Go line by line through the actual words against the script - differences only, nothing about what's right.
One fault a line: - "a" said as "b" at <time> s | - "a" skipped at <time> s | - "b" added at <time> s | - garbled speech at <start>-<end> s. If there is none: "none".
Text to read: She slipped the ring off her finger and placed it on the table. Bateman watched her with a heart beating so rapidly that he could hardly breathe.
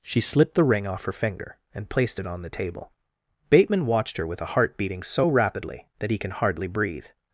- "could" said as "can" at 6.2 s